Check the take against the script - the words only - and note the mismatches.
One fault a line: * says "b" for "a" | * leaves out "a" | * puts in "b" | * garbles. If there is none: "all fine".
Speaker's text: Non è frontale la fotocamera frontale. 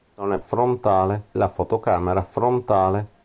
all fine